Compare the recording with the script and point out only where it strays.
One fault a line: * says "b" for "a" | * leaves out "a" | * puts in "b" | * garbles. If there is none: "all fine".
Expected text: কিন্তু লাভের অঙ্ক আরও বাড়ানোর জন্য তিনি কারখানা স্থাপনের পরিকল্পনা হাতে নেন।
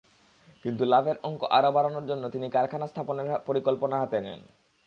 all fine